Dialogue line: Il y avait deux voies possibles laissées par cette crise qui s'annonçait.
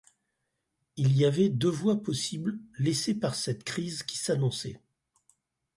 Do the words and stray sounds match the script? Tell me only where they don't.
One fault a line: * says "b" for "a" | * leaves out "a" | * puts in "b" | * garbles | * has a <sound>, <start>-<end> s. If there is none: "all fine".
all fine